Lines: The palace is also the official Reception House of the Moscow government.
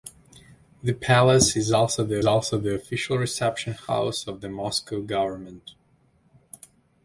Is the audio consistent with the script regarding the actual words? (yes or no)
no